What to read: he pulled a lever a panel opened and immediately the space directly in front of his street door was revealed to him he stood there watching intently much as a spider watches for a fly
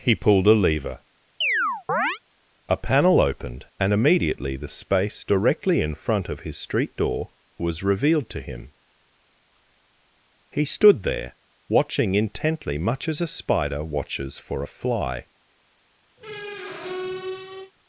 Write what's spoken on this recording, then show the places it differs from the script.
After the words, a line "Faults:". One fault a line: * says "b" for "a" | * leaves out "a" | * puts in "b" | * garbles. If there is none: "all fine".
he pulled a lever a panel opened and immediately the space directly in front of his street door was revealed to him he stood there watching intently much as a spider watches for a fly
Faults:
all fine